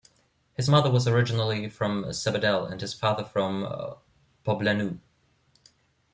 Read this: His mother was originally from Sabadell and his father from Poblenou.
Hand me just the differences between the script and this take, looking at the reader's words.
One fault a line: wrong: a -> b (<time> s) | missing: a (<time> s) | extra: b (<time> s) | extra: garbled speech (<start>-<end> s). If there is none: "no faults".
no faults